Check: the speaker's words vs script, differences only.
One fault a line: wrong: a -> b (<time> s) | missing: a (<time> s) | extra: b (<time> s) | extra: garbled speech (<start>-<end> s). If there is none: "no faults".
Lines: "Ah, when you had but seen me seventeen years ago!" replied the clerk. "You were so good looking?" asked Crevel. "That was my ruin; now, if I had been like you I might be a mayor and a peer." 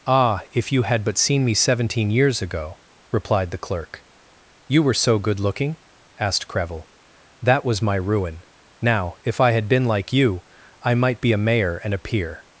wrong: when -> if (0.5 s)